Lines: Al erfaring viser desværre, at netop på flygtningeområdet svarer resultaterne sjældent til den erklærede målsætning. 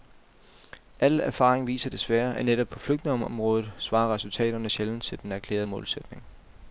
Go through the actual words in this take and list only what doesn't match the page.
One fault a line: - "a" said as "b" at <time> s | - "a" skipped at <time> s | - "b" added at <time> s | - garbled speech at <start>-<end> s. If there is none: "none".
none